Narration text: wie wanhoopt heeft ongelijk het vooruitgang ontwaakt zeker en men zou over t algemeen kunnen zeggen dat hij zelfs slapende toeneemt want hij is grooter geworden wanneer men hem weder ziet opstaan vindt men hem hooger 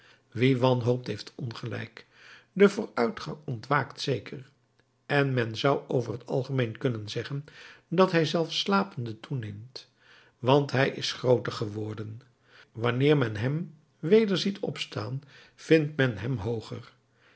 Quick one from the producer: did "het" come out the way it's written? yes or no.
no